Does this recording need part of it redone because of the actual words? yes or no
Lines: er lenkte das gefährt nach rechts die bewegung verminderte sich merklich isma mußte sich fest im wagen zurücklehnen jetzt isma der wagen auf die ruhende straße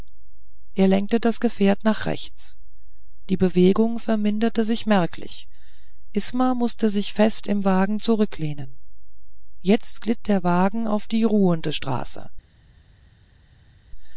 yes